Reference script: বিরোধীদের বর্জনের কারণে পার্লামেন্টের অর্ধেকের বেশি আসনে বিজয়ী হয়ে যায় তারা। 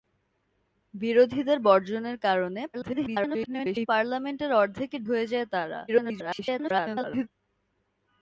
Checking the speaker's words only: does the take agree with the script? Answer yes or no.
no